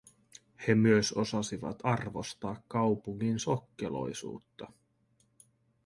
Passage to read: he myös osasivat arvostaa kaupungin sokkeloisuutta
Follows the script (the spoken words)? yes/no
yes